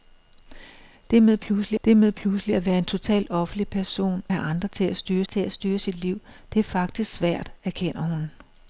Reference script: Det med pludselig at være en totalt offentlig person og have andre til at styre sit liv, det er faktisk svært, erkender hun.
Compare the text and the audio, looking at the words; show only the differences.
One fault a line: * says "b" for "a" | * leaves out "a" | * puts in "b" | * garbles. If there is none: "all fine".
* puts in "det med pludselig"
* leaves out "og"
* puts in "til at styre"